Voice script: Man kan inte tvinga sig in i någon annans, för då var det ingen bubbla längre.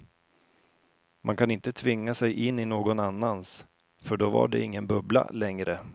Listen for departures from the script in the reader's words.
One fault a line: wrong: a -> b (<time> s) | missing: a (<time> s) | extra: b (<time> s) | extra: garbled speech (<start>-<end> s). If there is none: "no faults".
no faults